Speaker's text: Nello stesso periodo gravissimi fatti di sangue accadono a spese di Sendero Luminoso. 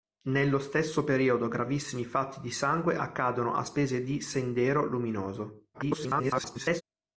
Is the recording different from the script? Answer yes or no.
yes